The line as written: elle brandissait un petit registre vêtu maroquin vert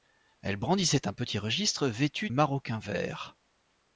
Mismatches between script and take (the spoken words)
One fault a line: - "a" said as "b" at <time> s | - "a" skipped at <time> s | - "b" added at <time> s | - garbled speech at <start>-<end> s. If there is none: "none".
none